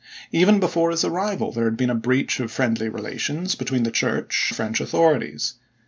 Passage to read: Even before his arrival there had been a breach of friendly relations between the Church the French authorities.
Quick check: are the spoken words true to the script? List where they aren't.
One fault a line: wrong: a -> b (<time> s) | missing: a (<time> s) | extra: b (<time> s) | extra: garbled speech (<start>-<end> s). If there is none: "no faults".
no faults